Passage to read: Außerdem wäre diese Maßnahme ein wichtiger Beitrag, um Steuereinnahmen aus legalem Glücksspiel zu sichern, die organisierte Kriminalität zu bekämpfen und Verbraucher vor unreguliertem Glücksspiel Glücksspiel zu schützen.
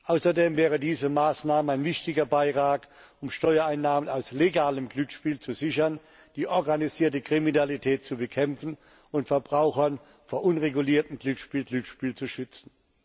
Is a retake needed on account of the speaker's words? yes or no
no